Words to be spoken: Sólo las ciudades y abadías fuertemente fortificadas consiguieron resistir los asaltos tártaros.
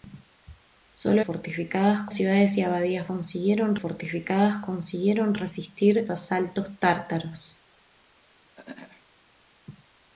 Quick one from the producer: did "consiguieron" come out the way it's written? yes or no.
yes